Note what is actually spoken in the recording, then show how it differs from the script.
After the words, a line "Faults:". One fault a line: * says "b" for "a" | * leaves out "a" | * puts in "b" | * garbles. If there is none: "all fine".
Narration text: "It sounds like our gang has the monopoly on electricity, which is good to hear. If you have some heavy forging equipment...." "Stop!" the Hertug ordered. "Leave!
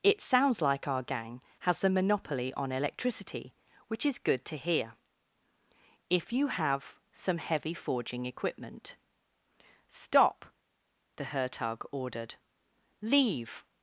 "It sounds like our gang has the monopoly on electricity, which is good to hear. If you have some heavy forging equipment...." "Stop!" the Hertug ordered. "Leave!
Faults:
all fine